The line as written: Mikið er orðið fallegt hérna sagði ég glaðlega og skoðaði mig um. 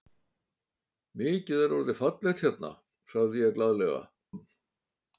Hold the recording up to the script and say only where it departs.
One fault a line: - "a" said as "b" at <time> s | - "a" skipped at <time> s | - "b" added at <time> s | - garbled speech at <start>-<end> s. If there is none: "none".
- "og skoðaði mig" skipped at 4.0 s